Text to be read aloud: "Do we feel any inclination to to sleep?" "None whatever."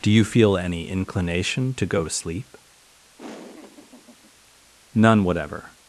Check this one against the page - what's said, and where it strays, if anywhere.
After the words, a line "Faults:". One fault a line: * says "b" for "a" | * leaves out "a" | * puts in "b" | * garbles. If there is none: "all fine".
"Do you feel any inclination to go to sleep?" "None whatever."
Faults:
* says "you" for "we"
* puts in "go"